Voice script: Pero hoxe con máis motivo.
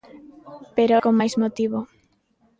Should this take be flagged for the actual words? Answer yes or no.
yes